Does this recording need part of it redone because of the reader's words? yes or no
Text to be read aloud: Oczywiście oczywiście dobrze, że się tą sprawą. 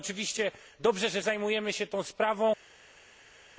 yes